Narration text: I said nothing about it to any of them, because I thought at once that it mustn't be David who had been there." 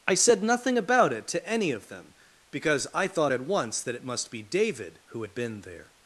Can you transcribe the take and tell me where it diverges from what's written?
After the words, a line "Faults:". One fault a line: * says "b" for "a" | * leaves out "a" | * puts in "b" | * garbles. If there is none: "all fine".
I said nothing about it to any of them, because I thought at once that it must be David who had been there."
Faults:
* says "must" for "mustn't"